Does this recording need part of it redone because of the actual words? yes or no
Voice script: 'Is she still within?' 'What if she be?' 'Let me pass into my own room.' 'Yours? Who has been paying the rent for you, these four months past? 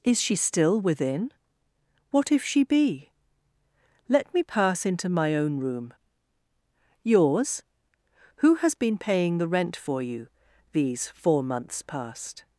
no